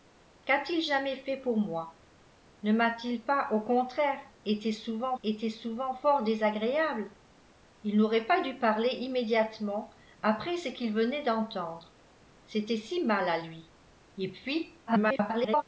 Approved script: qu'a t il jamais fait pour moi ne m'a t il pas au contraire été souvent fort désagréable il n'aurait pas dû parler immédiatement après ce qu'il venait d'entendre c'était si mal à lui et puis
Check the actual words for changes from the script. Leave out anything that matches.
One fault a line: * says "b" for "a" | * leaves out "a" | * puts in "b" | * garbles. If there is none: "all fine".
* puts in "été souvent"
* garbles